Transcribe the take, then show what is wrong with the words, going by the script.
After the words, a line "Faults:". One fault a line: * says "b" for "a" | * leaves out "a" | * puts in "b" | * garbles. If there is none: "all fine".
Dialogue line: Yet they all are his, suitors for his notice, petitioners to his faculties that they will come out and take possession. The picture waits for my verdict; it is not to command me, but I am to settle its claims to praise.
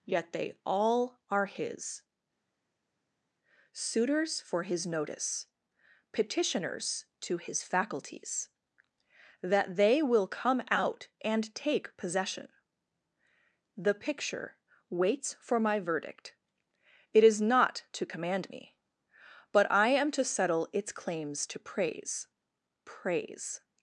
Yet they all are his, suitors for his notice, petitioners to his faculties that they will come out and take possession. The picture waits for my verdict; it is not to command me, but I am to settle its claims to praise praise.
Faults:
* puts in "praise"